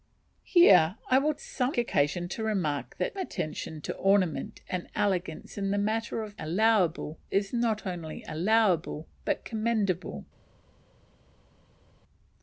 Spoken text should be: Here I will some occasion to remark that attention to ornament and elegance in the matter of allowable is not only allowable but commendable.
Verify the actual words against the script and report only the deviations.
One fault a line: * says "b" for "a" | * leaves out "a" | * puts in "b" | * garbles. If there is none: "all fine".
all fine